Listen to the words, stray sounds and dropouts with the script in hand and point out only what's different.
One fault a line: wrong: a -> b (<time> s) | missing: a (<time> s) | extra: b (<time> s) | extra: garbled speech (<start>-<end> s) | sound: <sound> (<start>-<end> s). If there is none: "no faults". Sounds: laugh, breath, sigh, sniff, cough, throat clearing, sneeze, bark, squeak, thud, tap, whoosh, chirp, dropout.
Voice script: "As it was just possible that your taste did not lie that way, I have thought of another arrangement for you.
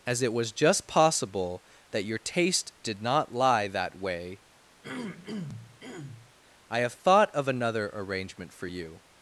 sound: throat clearing (4.8-6.3 s)